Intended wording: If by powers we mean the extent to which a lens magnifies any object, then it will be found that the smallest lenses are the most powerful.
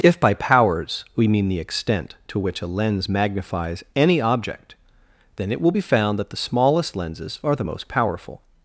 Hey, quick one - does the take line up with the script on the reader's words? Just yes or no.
yes